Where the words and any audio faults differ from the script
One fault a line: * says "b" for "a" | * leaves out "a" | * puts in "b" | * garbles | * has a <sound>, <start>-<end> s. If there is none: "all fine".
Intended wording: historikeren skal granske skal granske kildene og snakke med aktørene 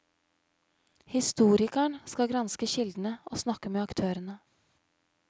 * leaves out "skal granske"